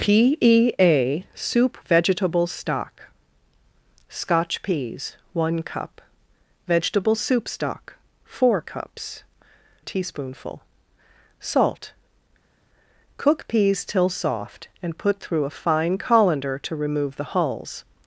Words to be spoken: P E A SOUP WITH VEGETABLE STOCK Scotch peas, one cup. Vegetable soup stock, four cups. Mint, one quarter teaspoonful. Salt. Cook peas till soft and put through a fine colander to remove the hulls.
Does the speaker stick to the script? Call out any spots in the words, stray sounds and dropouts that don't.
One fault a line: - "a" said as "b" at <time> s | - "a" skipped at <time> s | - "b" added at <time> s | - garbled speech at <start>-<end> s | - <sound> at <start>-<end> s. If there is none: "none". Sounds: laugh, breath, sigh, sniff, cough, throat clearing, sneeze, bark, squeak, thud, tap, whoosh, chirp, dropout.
- "WITH" skipped at 1.8 s
- "Mint one quarter" skipped at 9.2 s